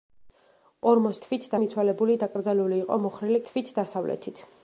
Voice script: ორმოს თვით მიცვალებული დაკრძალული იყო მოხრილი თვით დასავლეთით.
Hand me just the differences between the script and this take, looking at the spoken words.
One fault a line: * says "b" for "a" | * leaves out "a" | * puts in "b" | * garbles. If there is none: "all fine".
all fine